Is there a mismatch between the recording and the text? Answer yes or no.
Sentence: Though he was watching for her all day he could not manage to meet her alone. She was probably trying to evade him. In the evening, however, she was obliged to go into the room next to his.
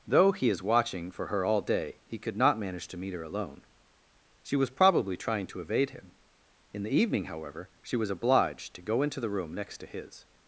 yes